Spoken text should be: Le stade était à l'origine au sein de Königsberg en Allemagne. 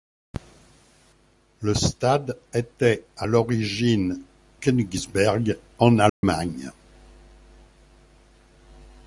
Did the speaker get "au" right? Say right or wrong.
wrong